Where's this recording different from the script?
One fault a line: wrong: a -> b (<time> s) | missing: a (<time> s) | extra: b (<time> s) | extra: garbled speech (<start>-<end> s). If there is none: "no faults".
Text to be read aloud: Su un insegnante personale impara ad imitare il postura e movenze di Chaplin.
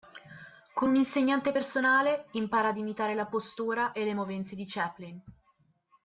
wrong: Su -> Con (0.7 s)
wrong: il -> la (3.1 s)
extra: le (4.0 s)